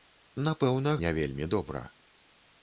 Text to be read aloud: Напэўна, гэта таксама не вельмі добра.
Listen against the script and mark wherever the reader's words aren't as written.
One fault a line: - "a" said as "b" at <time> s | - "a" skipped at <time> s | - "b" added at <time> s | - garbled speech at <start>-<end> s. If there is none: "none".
- "гэта таксама" skipped at 0.9 s